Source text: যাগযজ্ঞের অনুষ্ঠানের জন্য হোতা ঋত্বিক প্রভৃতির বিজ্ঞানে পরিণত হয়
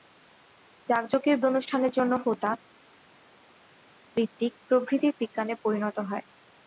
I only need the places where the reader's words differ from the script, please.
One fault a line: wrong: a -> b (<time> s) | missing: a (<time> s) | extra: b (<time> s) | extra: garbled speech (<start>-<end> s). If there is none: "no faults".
no faults